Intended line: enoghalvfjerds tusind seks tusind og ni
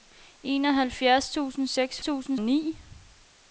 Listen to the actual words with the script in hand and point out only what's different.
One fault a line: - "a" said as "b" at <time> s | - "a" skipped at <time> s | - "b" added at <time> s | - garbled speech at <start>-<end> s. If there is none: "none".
none